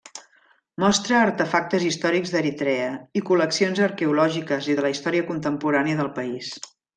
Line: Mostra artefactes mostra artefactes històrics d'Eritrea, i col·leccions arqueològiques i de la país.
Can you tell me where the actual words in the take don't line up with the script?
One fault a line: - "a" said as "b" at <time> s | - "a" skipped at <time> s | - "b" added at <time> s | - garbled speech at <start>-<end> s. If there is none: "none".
- "mostra artefactes" skipped at 1.9 s
- "història contemporània del" added at 5.0 s